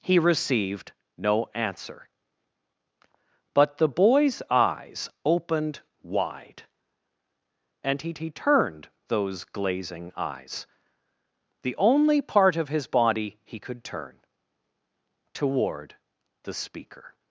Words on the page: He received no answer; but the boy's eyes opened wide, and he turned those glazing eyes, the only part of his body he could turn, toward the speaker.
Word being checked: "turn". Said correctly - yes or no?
yes